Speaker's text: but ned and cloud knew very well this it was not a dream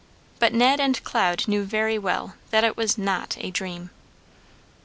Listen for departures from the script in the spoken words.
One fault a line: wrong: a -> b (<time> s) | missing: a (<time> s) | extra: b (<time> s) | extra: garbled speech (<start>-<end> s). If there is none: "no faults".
wrong: this -> that (2.5 s)